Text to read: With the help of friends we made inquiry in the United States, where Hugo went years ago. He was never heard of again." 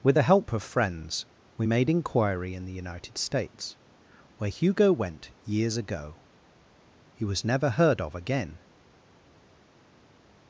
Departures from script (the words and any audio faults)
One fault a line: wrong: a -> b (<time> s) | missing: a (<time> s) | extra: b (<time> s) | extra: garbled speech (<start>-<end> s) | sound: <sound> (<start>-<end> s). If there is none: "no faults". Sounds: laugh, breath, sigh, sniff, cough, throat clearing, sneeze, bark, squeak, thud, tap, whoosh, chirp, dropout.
no faults